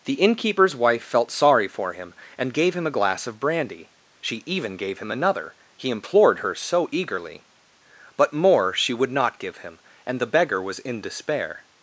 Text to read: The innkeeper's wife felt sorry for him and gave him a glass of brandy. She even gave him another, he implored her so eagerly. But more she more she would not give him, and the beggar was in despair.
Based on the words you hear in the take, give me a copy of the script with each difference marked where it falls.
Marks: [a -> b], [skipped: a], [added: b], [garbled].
The innkeeper's wife felt sorry for him and gave him a glass of brandy. She even gave him another, he implored her so eagerly. But more she [skipped: more she] would not give him, and the beggar was in despair.